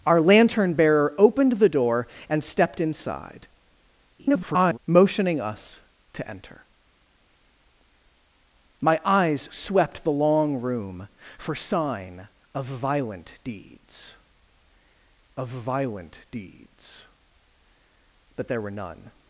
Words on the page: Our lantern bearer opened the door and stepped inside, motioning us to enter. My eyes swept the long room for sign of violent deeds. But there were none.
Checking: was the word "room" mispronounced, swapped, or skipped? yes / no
no